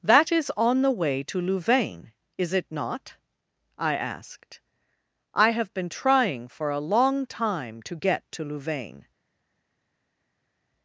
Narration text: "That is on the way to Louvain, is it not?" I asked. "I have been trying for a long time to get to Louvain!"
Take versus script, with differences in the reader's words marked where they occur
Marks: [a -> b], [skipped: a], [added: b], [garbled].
"That is on the way to Louvain, is it not?" I asked. "I have been trying for a long time to get to Louvain!"